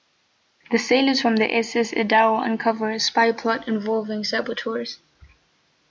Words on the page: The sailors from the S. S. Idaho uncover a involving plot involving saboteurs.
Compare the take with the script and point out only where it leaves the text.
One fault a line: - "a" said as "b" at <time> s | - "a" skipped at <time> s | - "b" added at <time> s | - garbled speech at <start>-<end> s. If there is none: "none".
- "involving" said as "spy" at 3.0 s